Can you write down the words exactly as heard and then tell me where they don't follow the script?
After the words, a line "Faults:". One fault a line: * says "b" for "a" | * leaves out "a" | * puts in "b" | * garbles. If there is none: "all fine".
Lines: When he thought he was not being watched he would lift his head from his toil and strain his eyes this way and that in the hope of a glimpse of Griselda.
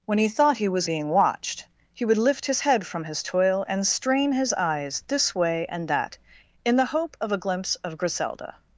When he thought he was being watched he would lift his head from his toil and strain his eyes this way and that in the hope of a glimpse of Griselda.
Faults:
* leaves out "not"